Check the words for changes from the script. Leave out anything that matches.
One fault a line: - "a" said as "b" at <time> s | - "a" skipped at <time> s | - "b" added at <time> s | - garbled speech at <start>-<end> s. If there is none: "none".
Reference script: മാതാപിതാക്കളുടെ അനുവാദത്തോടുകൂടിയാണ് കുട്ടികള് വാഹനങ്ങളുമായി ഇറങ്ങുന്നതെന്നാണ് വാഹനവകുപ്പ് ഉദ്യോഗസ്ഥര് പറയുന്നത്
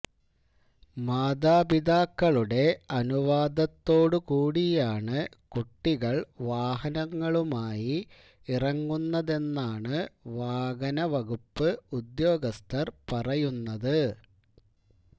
none